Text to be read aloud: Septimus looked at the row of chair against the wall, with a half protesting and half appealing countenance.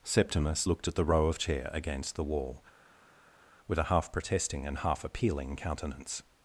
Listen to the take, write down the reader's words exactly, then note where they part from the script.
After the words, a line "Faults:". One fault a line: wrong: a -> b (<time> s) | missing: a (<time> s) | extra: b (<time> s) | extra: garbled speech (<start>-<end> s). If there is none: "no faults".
Septimus looked at the row of chair against the wall, with a half protesting and half appealing countenance.
Faults:
no faults